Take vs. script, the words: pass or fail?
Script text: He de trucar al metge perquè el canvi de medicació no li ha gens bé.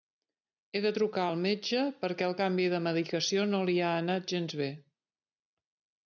fail